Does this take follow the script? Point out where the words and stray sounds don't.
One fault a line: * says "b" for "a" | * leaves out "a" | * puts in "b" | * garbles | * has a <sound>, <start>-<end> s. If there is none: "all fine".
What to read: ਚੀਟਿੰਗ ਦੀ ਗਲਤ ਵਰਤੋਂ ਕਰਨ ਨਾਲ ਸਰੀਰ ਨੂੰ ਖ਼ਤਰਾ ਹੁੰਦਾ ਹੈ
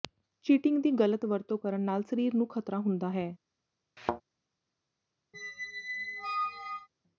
* has a thud, 4.0-4.2 s
* has a squeak, 5.3-6.9 s